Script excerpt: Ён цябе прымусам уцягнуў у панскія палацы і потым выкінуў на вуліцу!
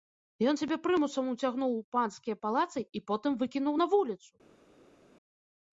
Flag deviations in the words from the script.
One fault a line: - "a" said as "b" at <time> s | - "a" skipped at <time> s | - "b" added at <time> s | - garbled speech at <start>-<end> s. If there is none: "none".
none